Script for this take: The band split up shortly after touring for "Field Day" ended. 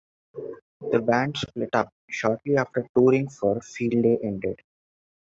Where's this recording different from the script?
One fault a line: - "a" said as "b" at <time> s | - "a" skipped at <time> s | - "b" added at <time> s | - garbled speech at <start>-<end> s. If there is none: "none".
none